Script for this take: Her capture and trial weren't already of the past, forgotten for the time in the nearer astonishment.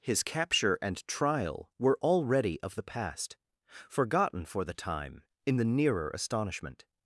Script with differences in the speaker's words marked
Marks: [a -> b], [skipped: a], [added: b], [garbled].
[Her -> His] capture and trial [weren't -> were] already of the past, forgotten for the time in the nearer astonishment.